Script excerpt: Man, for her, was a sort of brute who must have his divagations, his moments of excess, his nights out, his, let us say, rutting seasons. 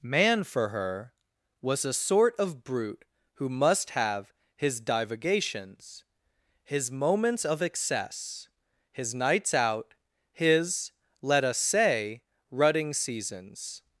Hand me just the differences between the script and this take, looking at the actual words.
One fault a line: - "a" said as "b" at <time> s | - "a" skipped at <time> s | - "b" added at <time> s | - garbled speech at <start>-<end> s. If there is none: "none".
none